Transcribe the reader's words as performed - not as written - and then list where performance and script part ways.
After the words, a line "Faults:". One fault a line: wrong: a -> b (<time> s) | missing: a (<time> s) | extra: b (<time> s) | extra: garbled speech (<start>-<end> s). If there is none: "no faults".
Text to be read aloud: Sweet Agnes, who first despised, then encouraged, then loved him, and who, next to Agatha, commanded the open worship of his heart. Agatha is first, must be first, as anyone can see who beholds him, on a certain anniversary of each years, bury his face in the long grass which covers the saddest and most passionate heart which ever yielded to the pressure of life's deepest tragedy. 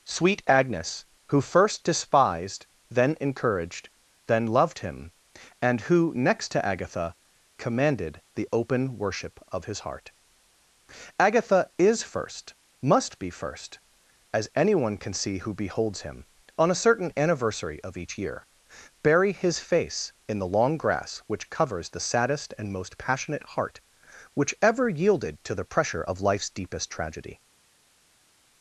Sweet Agnes, who first despised, then encouraged, then loved him, and who, next to Agatha, commanded the open worship of his heart. Agatha is first, must be first, as anyone can see who beholds him, on a certain anniversary of each year, bury his face in the long grass which covers the saddest and most passionate heart which ever yielded to the pressure of life's deepest tragedy.
Faults:
wrong: years -> year (18.2 s)